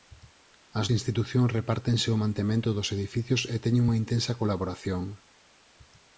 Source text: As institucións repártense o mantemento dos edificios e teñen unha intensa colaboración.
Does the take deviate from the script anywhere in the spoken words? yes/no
no